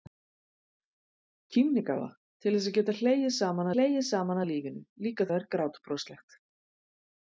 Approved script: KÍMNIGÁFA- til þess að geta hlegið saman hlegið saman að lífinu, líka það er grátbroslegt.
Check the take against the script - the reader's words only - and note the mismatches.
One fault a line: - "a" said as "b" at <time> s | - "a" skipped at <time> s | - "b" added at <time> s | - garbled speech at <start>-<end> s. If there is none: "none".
none